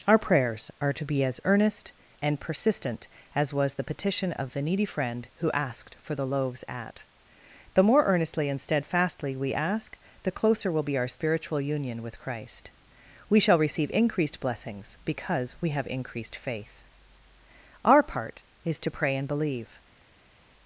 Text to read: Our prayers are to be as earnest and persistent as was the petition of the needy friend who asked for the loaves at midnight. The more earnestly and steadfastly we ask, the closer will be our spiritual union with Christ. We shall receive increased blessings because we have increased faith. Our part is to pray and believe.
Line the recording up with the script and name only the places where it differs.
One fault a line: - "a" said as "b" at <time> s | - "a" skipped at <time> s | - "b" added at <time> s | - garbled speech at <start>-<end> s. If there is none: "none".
- "midnight" skipped at 7.0 s